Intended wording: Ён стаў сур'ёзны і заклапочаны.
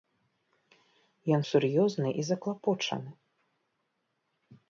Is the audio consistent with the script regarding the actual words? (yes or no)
no